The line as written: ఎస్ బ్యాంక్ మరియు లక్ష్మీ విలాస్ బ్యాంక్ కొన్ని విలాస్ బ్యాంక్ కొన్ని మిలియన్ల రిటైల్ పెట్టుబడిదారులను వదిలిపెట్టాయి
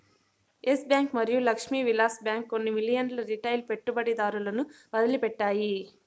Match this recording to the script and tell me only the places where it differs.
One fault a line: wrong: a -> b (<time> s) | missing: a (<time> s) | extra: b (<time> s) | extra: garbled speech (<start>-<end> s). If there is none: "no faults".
missing: విలాస్ బ్యాంక్ కొన్ని (2.7 s)